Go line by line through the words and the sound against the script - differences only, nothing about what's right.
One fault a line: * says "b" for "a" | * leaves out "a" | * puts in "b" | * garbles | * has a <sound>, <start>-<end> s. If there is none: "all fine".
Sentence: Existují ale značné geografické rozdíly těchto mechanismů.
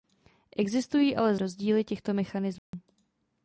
* leaves out "značné geografické"
* has a dropout, 2.6-2.7 s